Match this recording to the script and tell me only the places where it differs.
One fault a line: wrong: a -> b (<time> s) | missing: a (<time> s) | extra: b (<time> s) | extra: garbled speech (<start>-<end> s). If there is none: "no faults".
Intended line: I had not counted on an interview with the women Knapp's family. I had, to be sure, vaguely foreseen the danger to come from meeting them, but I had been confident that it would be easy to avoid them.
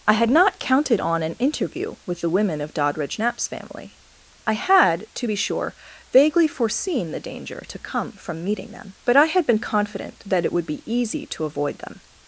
extra: of Doddridge (2.6 s)